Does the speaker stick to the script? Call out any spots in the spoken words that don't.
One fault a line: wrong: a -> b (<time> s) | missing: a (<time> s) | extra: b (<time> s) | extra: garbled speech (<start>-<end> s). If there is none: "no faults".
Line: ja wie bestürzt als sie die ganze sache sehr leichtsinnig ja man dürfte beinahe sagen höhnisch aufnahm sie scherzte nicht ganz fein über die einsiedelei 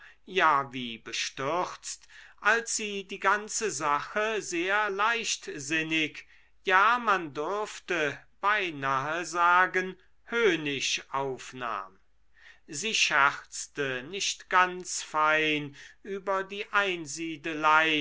no faults